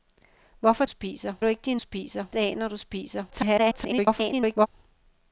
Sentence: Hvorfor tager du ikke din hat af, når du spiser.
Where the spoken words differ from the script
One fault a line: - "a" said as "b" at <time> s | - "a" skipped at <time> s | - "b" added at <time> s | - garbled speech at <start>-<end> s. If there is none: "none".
- "tager" said as "spiser" at 0.9 s
- "hat" said as "spiser" at 1.8 s
- garbled speech at 3.3-4.7 s